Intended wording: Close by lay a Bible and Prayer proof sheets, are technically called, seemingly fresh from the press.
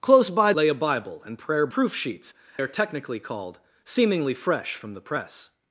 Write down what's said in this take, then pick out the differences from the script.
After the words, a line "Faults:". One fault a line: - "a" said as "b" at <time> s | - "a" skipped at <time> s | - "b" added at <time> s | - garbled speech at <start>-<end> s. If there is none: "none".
Close by lay a Bible and Prayer proof sheets, are technically called, seemingly fresh from the press.
Faults:
none